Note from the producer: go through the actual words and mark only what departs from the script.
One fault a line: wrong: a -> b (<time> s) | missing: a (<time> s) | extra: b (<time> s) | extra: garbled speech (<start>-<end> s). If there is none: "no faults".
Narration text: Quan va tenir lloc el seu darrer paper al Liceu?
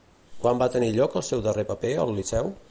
no faults